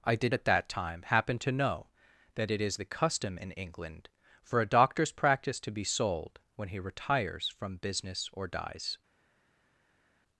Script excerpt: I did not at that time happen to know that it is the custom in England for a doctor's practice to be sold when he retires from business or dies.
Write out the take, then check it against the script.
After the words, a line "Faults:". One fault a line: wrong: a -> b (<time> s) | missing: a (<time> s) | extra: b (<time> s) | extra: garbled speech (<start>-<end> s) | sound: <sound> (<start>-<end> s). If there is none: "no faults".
I did at that time happen to know that it is the custom in England for a doctor's practice to be sold when he retires from business or dies.
Faults:
missing: not (0.3 s)